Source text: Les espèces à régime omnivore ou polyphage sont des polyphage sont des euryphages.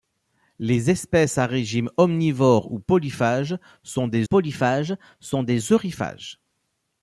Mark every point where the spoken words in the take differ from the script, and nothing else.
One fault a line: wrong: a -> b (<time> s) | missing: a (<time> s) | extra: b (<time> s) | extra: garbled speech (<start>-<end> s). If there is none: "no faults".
no faults